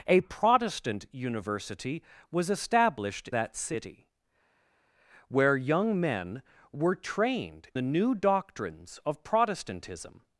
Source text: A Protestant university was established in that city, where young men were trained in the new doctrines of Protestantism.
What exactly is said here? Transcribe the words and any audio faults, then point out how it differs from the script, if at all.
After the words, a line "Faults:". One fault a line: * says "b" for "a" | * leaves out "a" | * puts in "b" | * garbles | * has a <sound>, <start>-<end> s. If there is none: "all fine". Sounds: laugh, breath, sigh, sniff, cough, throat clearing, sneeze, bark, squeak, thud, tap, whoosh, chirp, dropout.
A Protestant university was established that city, where young men were trained the new doctrines of Protestantism.
Faults:
* leaves out "in"
* leaves out "in"